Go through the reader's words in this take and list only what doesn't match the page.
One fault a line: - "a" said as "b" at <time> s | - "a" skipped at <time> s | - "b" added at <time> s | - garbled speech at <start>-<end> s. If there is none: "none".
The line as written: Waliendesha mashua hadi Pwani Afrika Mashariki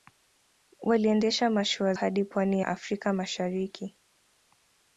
none